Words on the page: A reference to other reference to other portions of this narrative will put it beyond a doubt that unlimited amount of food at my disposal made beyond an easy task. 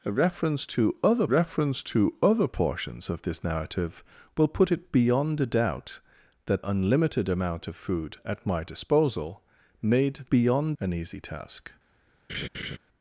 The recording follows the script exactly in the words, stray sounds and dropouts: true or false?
false